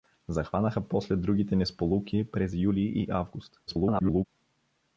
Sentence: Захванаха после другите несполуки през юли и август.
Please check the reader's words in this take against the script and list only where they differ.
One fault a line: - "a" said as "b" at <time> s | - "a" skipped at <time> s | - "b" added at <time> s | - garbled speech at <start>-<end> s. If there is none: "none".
- garbled speech at 3.7-4.2 s